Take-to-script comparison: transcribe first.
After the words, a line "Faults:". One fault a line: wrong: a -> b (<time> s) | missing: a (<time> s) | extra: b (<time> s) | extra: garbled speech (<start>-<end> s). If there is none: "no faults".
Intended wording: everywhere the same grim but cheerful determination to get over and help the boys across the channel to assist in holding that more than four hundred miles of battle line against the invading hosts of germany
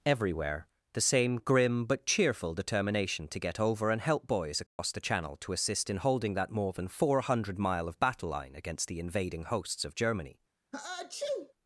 everywhere the same grim but cheerful determination to get over and help boys across the channel to assist in holding that more than four hundred mile of battle line against the invading hosts of germany
Faults:
missing: the (4.3 s)
wrong: miles -> mile (7.6 s)